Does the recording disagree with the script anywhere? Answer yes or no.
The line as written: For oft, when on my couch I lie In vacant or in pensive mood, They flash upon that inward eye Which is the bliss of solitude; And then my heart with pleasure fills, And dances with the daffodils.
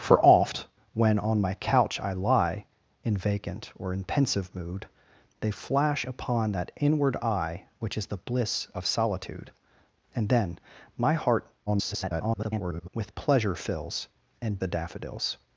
yes